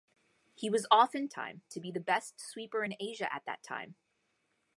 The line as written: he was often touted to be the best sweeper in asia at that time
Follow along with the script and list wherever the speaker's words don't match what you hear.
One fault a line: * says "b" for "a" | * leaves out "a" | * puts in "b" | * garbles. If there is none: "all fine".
* says "time" for "touted"